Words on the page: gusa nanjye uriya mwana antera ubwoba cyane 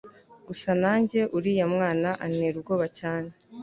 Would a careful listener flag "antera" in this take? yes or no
no